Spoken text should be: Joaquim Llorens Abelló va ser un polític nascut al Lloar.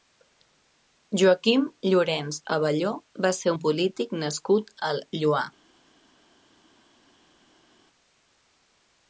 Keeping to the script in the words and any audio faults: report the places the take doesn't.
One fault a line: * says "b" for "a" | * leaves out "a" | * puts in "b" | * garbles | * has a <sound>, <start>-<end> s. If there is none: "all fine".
all fine